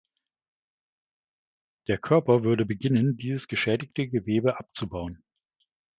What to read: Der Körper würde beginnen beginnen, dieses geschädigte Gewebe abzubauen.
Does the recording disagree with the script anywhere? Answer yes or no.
yes